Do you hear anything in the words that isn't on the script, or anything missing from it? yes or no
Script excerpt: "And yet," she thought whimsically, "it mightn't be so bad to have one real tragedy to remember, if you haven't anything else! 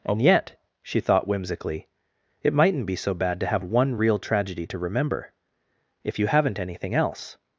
no